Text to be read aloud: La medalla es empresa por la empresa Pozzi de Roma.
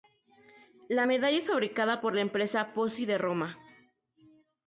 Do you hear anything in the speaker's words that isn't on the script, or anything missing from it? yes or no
yes